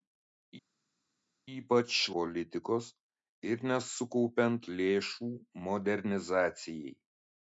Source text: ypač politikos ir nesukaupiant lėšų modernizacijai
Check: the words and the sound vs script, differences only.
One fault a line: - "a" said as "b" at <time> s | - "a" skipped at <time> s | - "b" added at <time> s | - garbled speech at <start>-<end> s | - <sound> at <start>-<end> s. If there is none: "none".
none